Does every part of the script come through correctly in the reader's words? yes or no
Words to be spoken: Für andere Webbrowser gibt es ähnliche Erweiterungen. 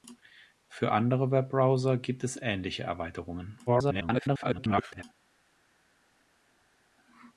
no